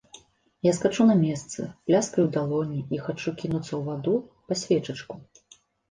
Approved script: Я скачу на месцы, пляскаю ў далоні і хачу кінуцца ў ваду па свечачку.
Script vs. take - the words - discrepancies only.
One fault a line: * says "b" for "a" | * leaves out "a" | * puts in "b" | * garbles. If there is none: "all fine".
all fine